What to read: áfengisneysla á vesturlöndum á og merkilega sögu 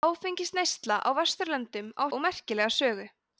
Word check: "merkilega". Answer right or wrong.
right